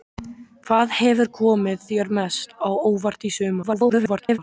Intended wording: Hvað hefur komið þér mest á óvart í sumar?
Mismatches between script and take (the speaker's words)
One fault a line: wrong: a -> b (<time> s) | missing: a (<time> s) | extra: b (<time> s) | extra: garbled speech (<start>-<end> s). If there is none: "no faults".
extra: garbled speech (3.6-4.4 s)